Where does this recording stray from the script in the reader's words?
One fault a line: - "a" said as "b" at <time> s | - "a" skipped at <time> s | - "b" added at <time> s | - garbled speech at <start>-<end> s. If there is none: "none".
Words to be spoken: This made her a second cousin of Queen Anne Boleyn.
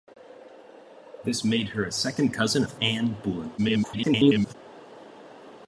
- "Queen" skipped at 2.8 s
- garbled speech at 3.6-4.6 s